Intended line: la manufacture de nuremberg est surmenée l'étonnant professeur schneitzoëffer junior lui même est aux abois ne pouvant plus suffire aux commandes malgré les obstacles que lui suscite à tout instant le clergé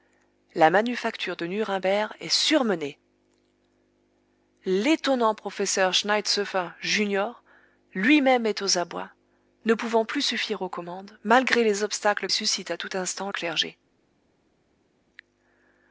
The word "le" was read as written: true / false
false